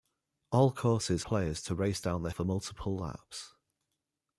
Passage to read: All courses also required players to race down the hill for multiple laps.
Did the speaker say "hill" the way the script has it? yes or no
no